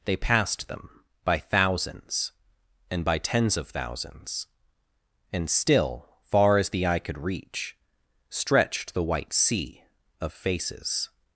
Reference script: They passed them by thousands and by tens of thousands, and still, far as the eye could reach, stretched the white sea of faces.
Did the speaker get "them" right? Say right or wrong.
right